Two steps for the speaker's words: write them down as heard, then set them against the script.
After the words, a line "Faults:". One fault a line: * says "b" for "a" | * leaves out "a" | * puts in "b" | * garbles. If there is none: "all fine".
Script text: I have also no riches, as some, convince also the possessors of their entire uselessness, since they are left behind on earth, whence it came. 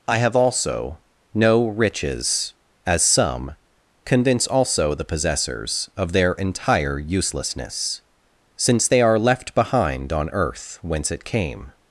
I have also no riches, as some, convince also the possessors of their entire uselessness, since they are left behind on earth, whence it came.
Faults:
all fine